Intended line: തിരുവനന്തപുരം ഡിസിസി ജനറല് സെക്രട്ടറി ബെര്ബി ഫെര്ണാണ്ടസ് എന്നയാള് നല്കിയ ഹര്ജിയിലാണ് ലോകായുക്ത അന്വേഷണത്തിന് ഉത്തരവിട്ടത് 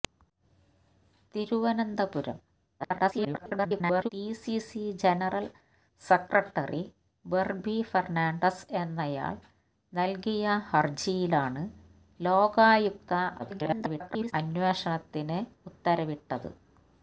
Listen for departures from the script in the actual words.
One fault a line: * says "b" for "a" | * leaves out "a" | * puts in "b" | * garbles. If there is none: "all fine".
* garbles
* garbles